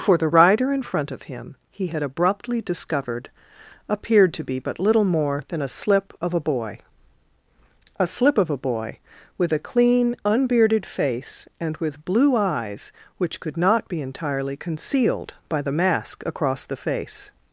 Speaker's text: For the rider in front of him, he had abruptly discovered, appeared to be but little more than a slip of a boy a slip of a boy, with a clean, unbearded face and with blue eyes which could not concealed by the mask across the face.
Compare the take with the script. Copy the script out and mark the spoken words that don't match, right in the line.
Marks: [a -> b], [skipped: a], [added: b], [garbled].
For the rider in front of him, he had abruptly discovered, appeared to be but little more than a slip of a boy a slip of a boy, with a clean, unbearded face and with blue eyes which could not [added: be entirely] concealed by the mask across the face.